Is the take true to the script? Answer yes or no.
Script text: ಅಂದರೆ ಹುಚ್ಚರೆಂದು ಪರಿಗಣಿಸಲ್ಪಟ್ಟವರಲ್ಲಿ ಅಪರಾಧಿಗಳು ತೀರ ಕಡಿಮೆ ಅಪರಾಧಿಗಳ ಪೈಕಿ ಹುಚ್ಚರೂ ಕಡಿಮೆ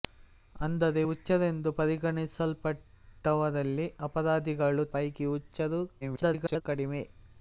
no